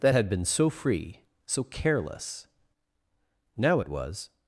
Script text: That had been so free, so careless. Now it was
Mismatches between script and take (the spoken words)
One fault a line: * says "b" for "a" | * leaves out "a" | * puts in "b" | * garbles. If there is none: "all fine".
all fine